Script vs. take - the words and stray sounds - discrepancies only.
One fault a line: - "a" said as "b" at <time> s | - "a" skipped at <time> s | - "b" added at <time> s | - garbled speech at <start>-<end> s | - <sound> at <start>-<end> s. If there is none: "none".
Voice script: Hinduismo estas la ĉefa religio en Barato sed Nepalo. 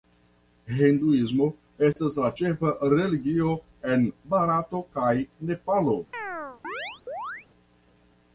- dropout at 1.9-2.0 s
- "sed" said as "kaj" at 5.0 s
- chirp at 6.1-7.5 s